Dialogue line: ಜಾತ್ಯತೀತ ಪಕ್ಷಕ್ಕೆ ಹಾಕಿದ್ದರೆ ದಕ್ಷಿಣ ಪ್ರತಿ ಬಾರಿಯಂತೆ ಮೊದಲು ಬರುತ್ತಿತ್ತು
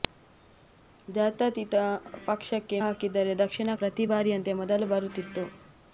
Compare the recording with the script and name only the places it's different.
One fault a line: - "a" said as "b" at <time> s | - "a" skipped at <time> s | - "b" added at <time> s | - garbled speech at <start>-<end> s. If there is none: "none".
none